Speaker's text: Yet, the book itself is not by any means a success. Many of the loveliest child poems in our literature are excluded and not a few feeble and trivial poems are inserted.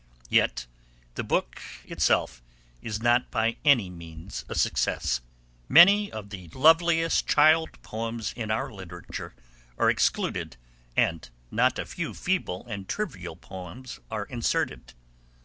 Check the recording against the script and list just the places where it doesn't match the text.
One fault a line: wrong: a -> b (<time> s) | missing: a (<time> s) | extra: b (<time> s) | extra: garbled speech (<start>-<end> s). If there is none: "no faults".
no faults